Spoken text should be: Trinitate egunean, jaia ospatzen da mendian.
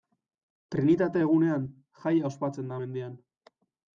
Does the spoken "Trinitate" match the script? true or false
true